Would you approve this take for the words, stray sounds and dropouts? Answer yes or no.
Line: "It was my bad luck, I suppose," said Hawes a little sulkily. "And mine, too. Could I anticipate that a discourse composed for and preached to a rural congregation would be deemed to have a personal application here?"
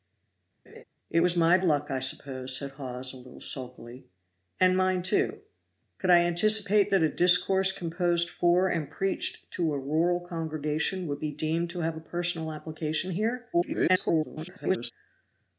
no